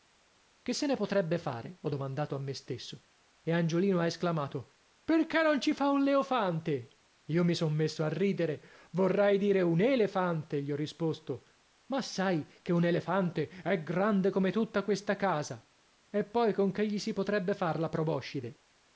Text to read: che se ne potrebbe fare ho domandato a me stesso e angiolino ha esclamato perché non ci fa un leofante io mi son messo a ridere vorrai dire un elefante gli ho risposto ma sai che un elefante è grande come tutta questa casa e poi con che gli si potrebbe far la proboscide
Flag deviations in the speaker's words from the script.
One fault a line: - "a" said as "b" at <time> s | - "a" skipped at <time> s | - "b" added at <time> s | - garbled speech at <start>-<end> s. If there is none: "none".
none